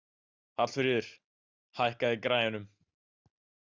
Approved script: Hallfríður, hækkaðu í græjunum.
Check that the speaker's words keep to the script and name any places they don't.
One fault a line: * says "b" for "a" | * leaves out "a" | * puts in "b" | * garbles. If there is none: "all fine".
all fine